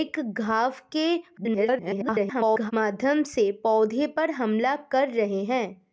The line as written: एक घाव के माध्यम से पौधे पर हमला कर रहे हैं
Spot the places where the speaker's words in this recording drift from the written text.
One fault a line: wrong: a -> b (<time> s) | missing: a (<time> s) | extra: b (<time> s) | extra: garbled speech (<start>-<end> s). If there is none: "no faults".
extra: garbled speech (1.4-2.7 s)